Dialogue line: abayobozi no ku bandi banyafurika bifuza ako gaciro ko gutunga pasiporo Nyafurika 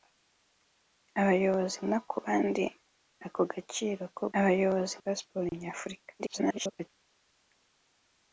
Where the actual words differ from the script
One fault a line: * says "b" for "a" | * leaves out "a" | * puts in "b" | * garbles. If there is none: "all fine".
* leaves out "banyafurika bifuza"
* says "abayobozi" for "gutunga"
* garbles